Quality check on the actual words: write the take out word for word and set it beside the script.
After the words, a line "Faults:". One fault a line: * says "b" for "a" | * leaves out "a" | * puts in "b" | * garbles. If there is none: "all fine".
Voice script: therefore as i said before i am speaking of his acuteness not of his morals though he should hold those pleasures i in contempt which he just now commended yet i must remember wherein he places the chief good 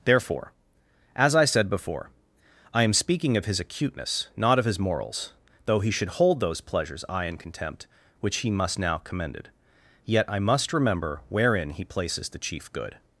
therefore as i said before i am speaking of his acuteness not of his morals though he should hold those pleasures i in contempt which he must now commended yet i must remember wherein he places the chief good
Faults:
* says "must" for "just"